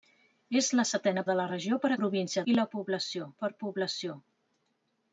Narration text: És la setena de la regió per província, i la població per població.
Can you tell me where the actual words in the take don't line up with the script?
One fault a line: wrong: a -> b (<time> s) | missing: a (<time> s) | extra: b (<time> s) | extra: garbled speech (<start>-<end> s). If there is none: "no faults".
no faults